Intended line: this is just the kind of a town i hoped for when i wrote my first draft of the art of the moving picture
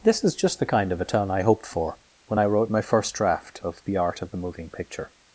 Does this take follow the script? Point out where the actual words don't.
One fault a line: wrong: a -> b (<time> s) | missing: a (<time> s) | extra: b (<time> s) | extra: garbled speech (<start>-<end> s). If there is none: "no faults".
no faults